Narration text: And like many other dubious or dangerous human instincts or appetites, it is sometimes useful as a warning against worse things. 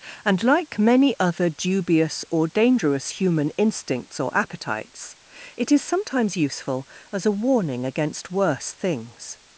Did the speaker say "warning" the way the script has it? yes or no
yes